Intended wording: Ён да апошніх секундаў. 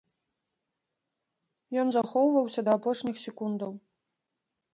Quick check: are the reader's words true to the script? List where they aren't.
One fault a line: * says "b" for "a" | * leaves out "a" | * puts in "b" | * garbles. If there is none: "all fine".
* puts in "захоўваўся"